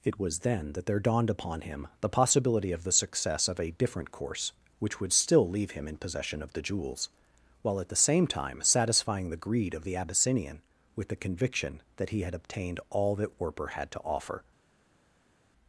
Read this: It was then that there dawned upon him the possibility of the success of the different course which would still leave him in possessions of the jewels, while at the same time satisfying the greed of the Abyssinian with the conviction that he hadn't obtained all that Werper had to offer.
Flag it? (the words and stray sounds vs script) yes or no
yes